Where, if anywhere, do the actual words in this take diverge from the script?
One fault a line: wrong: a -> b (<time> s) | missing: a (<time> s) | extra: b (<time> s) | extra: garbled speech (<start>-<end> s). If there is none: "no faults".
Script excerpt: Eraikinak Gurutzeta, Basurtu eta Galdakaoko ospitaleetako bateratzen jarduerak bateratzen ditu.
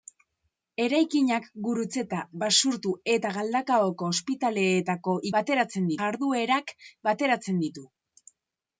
no faults